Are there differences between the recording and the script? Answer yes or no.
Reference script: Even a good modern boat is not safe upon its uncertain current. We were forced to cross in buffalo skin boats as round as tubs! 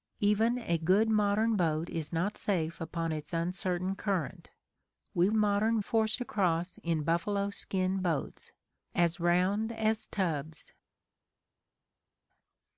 yes